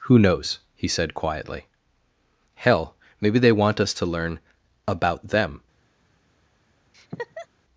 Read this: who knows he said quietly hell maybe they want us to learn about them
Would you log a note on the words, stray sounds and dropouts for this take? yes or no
yes